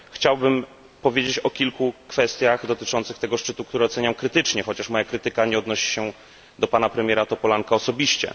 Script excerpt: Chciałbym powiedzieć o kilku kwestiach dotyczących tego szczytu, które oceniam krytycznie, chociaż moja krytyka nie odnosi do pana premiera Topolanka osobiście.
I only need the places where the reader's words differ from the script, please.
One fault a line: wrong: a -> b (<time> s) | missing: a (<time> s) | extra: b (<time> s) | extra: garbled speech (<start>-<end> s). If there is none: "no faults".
extra: się (5.9 s)